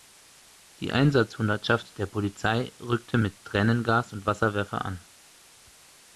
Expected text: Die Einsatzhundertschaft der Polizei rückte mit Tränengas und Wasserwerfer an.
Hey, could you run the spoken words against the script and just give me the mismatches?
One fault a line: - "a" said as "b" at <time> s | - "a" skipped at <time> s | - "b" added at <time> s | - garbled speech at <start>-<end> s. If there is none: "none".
none